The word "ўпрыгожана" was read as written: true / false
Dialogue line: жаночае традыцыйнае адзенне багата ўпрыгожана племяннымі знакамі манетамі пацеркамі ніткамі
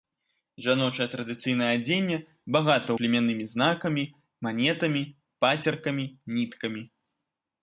false